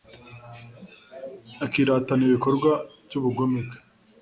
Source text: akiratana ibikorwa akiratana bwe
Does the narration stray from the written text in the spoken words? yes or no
yes